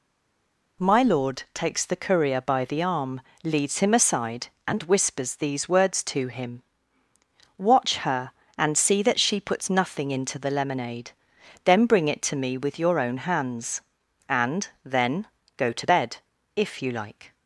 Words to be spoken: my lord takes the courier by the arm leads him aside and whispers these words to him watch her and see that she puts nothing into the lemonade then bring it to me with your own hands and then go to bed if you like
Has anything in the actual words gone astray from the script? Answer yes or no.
no